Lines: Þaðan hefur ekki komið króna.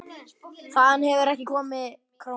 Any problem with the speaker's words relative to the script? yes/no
no